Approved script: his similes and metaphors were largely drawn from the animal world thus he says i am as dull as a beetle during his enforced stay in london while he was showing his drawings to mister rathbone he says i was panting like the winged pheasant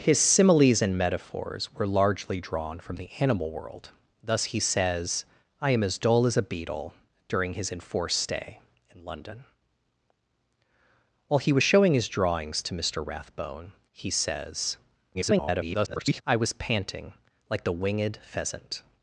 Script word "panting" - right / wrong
right